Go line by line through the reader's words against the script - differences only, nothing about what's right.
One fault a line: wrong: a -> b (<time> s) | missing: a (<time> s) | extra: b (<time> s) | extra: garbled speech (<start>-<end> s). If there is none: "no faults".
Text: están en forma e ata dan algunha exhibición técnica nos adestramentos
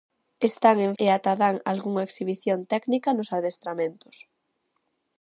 missing: forma (0.9 s)